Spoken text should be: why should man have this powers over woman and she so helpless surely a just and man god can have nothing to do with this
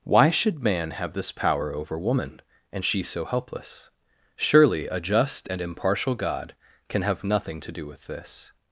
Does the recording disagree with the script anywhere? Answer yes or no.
yes